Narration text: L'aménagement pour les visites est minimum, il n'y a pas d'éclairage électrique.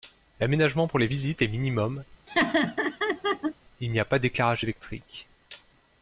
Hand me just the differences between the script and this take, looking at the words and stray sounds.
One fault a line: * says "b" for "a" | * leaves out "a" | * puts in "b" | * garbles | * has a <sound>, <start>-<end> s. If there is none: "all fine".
* has a laugh, 2.3-3.5 s